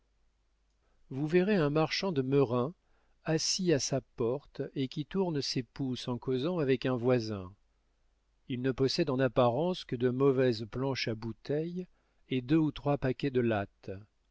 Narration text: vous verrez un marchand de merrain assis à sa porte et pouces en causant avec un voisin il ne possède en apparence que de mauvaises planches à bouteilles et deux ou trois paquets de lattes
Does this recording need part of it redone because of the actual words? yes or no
yes